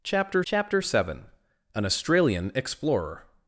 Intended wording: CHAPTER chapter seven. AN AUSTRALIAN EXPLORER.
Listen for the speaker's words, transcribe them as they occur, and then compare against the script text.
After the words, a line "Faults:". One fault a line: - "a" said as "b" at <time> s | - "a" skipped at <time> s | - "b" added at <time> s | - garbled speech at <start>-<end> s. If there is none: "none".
CHAPTER chapter seven. AN AUSTRALIAN EXPLORER.
Faults:
none